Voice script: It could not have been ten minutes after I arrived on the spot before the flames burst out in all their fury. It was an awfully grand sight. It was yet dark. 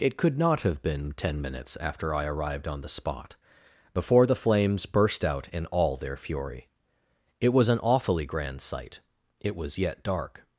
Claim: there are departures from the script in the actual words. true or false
false